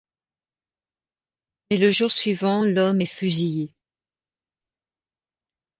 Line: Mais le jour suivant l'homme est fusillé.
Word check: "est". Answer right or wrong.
right